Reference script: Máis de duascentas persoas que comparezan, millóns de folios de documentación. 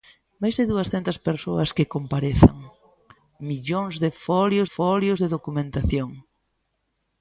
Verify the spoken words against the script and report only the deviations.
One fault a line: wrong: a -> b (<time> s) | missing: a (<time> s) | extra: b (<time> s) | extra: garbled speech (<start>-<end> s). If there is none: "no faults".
extra: folios (4.7 s)